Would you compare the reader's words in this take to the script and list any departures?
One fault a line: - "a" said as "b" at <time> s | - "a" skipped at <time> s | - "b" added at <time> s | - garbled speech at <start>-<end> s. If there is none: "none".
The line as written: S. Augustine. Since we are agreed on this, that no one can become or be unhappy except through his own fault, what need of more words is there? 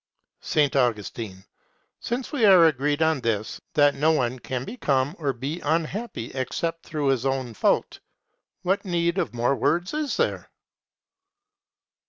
none